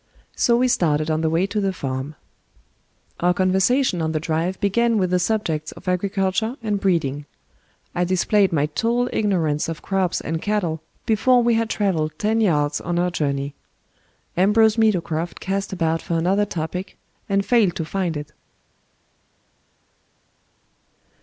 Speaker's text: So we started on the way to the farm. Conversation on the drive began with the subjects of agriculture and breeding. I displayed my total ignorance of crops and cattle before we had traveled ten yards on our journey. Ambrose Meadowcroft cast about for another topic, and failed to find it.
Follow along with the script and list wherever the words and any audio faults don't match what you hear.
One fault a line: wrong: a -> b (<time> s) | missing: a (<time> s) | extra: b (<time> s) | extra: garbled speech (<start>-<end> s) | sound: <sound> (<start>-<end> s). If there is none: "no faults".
extra: Our (3.2 s)